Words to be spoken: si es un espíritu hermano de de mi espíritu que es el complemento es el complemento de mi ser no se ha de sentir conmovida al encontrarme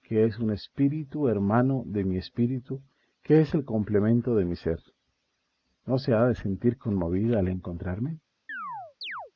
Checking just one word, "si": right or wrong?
wrong